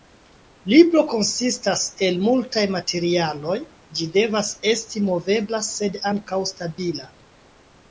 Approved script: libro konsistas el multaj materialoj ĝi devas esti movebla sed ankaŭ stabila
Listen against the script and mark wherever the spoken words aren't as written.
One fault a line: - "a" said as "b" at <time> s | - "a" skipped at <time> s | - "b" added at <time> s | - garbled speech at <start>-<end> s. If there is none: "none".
none